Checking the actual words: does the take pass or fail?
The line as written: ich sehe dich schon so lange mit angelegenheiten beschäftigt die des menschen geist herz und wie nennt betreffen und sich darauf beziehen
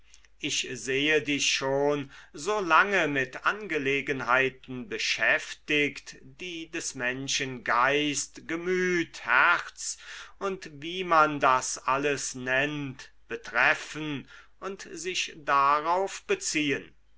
fail